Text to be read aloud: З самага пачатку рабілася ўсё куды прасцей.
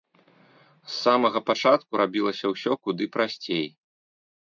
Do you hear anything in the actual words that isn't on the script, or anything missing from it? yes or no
no